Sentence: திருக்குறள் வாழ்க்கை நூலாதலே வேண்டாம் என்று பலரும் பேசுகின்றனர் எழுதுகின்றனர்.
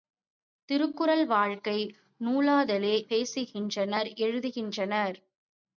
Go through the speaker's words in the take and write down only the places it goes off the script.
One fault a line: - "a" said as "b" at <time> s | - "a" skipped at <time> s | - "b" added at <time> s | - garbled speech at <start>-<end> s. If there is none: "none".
- "வேண்டாம் என்று பலரும்" skipped at 3.0 s